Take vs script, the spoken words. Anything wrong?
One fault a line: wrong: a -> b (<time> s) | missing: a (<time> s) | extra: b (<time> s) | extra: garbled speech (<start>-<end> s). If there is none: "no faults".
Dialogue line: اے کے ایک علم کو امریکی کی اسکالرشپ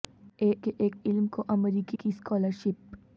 no faults